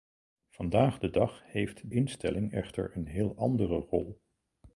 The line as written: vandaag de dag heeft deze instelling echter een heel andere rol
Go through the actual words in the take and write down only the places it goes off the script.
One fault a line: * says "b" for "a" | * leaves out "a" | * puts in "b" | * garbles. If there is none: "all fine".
* leaves out "deze"